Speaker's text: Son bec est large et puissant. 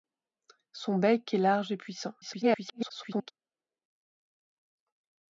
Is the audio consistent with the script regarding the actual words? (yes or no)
no